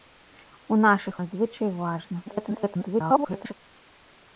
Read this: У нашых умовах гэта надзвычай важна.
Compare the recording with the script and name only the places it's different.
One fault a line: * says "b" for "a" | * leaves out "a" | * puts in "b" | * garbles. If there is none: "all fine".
* leaves out "умовах гэта"
* garbles